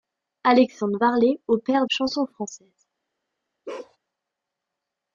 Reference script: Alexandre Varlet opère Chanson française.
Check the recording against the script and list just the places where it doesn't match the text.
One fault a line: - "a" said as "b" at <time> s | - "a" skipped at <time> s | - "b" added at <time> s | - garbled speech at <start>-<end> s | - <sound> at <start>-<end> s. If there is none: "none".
- bark at 3.7-4.0 s